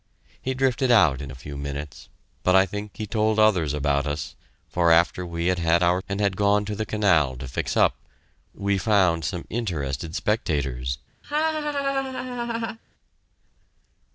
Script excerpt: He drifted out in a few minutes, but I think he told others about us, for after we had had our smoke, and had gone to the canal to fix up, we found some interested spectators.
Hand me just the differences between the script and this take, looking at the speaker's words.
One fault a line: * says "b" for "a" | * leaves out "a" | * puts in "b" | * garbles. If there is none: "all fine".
* leaves out "smoke"